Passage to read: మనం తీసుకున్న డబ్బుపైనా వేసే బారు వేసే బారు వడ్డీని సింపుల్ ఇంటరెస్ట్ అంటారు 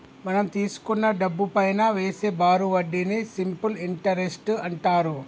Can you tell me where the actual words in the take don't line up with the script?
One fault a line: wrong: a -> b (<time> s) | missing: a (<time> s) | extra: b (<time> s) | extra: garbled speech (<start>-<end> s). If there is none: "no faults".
missing: వేసే బారు (2.7 s)